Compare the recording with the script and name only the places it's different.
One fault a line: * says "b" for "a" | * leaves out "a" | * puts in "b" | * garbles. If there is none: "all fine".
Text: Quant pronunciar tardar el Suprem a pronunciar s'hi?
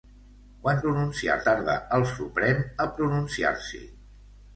all fine